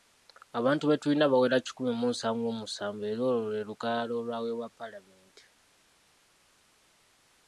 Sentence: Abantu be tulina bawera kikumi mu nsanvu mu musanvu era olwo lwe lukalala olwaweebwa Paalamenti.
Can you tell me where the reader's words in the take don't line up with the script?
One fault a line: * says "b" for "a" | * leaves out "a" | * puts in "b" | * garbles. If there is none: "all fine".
all fine